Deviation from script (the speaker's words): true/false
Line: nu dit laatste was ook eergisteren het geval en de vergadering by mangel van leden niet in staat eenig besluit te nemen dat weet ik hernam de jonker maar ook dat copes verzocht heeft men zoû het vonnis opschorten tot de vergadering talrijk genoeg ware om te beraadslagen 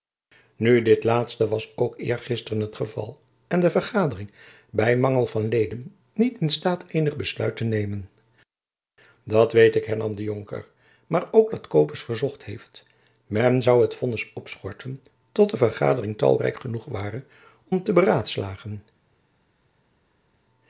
false